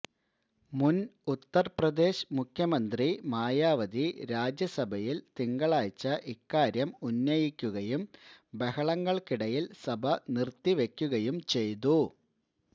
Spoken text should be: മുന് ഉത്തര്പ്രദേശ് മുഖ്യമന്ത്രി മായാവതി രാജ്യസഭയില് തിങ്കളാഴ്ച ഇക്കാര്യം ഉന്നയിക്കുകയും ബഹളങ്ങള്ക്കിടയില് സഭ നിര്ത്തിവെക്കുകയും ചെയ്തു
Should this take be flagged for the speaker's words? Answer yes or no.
no